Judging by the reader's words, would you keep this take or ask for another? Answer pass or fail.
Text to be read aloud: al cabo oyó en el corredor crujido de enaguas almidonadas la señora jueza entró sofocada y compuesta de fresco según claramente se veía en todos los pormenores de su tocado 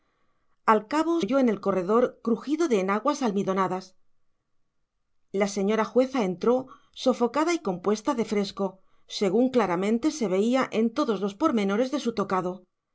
pass